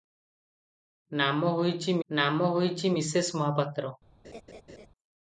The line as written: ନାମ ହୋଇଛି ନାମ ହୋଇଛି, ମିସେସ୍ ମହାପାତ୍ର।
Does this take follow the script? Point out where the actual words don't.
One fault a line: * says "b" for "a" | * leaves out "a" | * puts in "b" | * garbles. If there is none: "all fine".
all fine